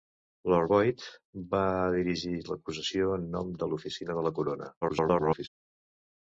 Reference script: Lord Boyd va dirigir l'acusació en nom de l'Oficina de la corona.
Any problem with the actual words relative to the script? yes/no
yes